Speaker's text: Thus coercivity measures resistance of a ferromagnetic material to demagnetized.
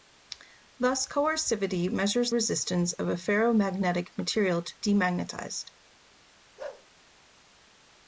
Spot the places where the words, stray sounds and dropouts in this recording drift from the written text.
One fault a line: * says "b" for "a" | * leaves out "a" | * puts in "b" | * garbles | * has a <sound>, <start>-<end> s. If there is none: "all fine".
* has a bark, 6.6-6.9 s